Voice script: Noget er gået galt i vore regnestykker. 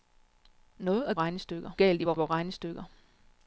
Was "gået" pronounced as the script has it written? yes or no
no